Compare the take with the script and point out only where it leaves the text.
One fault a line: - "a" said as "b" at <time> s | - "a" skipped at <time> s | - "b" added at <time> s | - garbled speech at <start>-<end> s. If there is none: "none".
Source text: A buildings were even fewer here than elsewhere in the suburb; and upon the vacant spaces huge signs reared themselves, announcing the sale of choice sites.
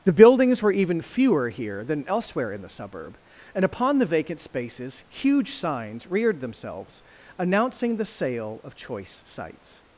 - "A" said as "The" at 0.0 s